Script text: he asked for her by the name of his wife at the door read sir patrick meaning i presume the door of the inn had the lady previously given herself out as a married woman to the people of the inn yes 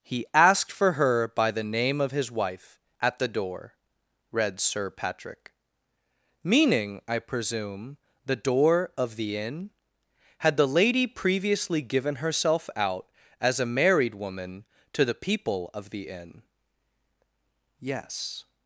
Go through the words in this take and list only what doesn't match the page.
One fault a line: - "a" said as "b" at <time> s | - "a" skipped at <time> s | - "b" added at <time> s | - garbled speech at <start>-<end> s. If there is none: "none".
none